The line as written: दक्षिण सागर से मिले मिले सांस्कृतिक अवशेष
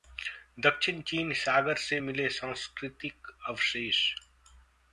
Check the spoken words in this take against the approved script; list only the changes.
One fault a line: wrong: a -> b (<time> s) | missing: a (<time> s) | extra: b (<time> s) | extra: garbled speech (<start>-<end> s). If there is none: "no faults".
extra: चीन (1.0 s)
missing: मिले (2.3 s)